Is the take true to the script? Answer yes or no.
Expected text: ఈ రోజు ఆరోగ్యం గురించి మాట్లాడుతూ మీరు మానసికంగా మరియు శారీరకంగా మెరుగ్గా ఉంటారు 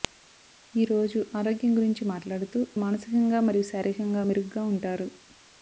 no